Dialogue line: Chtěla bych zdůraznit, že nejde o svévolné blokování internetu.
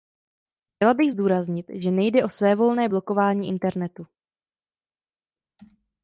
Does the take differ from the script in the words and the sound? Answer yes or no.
no